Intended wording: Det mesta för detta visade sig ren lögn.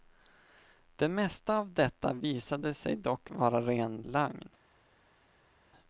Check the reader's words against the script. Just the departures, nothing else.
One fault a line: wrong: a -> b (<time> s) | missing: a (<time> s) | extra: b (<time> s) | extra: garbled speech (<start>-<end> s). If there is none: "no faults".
wrong: för -> av (1.6 s)
extra: dock vara (3.0 s)